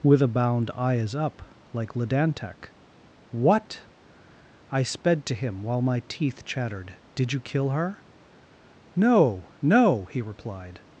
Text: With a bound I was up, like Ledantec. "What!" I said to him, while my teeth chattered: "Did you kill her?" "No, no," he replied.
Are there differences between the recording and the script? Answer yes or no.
yes